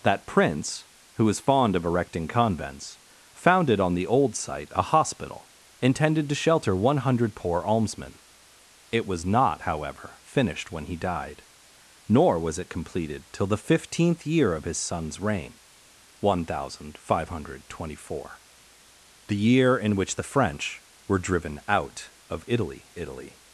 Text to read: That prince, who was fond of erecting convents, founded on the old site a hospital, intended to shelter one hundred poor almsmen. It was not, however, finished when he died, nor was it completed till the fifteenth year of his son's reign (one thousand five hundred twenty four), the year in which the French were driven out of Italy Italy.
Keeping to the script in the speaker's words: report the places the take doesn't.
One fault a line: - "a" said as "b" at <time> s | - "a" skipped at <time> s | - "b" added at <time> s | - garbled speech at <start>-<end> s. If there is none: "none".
none